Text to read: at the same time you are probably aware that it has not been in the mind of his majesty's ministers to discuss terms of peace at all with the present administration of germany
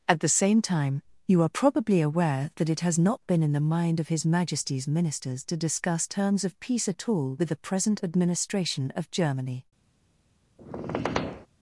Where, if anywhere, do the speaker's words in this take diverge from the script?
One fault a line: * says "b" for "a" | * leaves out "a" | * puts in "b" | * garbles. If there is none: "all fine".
all fine